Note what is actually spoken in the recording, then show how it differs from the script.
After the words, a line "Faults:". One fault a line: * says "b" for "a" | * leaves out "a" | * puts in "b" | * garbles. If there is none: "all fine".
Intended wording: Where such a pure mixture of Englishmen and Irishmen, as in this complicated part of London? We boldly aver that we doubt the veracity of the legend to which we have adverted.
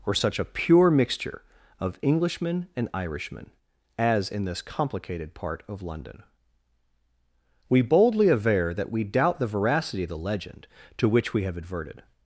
Or such a pure mixture of Englishmen and Irishmen, as in this complicated part of London? We boldly aver that we doubt the veracity of the legend to which we have adverted.
Faults:
* says "Or" for "Where"